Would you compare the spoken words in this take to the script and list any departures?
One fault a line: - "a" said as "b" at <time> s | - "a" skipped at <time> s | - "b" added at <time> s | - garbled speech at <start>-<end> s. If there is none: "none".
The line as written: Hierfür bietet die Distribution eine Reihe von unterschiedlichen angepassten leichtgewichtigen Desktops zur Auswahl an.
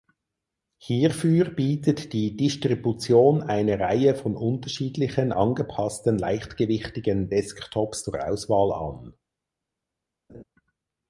none